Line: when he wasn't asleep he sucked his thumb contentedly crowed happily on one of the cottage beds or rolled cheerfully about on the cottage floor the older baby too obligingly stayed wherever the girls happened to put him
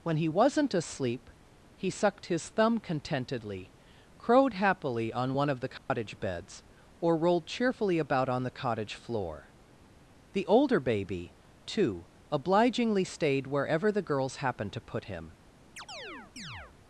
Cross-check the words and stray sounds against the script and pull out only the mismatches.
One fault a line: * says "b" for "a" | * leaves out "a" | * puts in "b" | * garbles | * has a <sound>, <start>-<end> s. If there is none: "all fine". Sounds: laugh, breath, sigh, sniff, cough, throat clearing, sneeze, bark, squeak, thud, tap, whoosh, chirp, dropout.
* has a dropout, 5.8-5.9 s
* has a chirp, 15.8-16.7 s